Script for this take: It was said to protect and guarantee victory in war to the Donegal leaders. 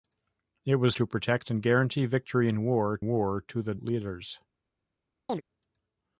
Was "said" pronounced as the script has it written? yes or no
no